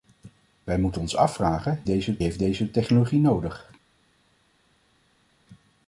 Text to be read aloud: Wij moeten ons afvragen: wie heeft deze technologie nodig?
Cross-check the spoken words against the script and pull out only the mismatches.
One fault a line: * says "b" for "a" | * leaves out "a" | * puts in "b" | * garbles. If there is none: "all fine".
* says "deze" for "wie"